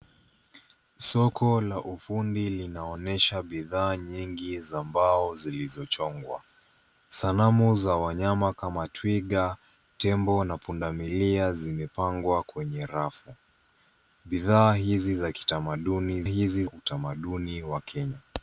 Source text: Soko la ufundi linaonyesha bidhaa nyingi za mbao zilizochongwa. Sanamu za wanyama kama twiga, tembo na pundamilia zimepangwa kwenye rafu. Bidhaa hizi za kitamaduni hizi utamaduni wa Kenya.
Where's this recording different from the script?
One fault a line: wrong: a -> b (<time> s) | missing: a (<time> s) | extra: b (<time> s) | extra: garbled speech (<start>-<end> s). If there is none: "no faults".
no faults